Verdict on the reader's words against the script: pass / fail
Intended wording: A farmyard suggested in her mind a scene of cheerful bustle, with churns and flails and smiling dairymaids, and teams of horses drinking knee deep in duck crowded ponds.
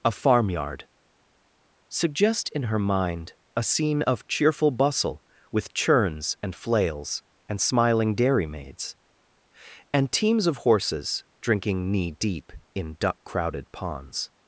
fail